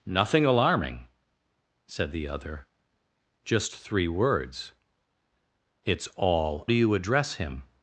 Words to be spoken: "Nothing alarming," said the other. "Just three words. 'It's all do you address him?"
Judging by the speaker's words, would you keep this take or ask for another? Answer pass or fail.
pass